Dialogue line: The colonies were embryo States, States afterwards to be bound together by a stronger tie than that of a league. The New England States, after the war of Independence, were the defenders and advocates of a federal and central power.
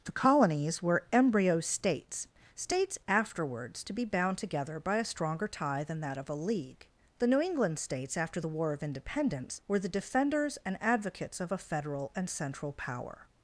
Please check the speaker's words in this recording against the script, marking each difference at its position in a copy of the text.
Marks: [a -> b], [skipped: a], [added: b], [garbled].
The colonies were embryo States, States afterwards to be bound together by a stronger tie than that of a league. The New England States, after the war of Independence, were the defenders and advocates of a federal and central power.